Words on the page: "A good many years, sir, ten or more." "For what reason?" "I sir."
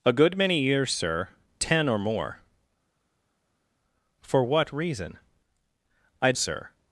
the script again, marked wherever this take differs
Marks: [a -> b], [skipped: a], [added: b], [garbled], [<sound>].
"A good many years, sir, ten or more." "For what reason?" "I sir."